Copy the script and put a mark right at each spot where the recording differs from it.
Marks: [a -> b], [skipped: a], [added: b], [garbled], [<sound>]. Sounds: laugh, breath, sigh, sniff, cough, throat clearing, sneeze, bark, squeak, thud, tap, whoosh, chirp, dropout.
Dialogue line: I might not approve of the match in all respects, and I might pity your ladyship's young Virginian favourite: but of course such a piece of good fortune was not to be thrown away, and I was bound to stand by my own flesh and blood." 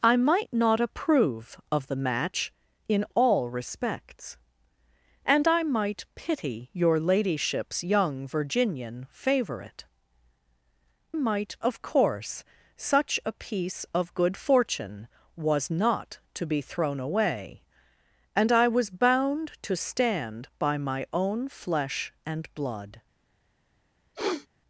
I might not approve of the match in all respects, and I might pity your ladyship's young Virginian favourite: [but -> might] of course such a piece of good fortune was not to be thrown away, and I was bound to stand by my own flesh and blood." [sniff]